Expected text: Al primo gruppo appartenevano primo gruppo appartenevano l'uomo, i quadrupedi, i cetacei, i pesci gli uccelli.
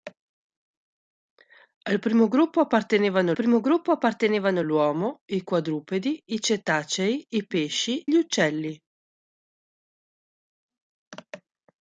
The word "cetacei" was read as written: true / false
true